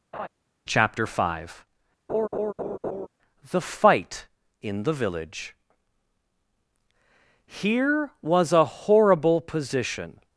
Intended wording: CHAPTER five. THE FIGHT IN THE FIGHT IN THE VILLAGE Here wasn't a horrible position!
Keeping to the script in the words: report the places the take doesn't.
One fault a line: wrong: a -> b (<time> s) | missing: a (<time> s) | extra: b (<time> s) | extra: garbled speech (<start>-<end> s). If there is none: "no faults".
missing: FIGHT IN THE (4.9 s)
wrong: wasn't -> was (8.2 s)